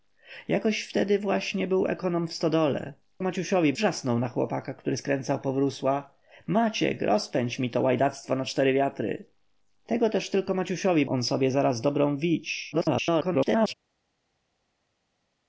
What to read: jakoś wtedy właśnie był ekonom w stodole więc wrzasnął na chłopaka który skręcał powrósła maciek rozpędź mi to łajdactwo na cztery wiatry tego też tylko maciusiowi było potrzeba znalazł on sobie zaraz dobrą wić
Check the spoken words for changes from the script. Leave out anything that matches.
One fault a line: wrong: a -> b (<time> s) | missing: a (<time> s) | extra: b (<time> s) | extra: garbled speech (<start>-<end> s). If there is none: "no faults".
wrong: więc -> maciusiowi (3.2 s)
missing: było potrzeba znalazł (11.1 s)
extra: garbled speech (12.7-13.7 s)